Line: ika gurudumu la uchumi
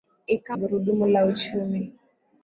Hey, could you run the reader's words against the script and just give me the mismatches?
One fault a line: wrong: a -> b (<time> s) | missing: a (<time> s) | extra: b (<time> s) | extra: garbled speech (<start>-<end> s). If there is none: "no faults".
no faults